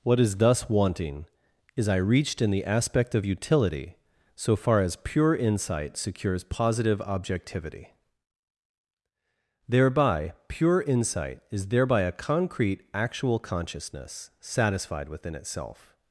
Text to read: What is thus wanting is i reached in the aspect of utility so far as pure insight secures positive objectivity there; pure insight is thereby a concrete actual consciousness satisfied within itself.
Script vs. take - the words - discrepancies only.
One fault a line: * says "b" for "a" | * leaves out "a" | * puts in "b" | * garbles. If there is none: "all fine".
* says "thereby" for "there"